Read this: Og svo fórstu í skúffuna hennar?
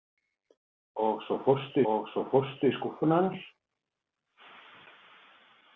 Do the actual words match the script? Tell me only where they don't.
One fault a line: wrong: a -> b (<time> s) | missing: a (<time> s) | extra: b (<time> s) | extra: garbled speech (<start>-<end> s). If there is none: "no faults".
extra: og svo fórstu (1.9 s)